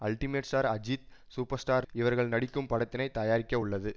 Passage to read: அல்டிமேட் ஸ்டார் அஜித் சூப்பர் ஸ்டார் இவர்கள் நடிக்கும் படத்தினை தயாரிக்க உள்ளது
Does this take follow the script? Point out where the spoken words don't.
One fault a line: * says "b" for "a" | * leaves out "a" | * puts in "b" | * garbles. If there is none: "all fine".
all fine